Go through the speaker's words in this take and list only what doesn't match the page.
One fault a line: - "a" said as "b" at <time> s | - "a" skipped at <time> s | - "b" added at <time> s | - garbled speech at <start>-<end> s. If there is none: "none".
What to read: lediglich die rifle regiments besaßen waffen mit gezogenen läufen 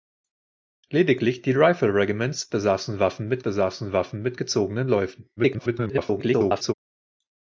- "besaßen waffen mit" added at 3.4 s
- garbled speech at 5.4-6.7 s